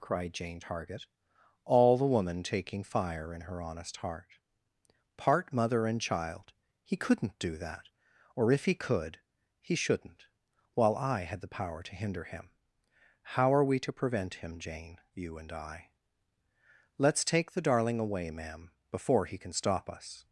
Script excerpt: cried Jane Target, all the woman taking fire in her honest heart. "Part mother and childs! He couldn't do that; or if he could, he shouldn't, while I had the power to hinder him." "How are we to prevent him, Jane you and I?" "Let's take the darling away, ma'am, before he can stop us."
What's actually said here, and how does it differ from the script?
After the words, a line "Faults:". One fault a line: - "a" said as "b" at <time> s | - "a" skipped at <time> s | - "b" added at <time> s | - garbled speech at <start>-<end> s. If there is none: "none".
cried Jane Target, all the woman taking fire in her honest heart. "Part mother and child! He couldn't do that; or if he could, he shouldn't, while I had the power to hinder him." "How are we to prevent him, Jane you and I?" "Let's take the darling away, ma'am, before he can stop us."
Faults:
- "childs" said as "child" at 6.0 s